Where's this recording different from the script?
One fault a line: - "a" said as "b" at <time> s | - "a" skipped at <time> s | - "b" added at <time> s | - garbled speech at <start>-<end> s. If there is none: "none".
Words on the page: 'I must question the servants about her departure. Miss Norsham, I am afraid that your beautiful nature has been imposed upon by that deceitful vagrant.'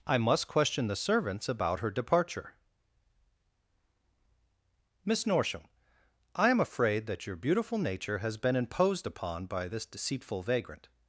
- "that" said as "this" at 9.7 s